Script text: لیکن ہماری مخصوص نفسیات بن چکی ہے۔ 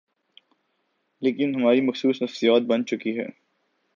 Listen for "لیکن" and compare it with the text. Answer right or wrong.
right